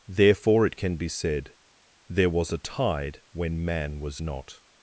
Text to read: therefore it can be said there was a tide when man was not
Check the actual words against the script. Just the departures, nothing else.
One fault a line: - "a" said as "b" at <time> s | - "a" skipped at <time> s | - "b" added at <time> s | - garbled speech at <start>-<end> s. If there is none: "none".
none